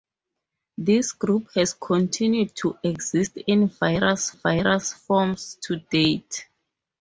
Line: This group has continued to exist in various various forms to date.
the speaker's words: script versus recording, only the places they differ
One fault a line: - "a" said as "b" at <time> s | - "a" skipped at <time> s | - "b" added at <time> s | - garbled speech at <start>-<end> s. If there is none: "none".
none